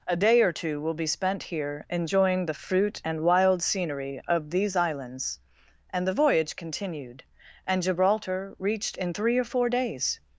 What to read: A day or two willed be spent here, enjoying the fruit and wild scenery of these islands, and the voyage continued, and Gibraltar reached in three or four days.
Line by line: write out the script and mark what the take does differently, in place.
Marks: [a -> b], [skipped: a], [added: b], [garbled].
A day or two [willed -> will] be spent here, enjoying the fruit and wild scenery of these islands, and the voyage continued, and Gibraltar reached in three or four days.